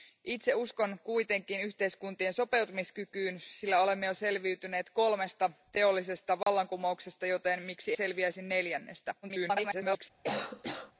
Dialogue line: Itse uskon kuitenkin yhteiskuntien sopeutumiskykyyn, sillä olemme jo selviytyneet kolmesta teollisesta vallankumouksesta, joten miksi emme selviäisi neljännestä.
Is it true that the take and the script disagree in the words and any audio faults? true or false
true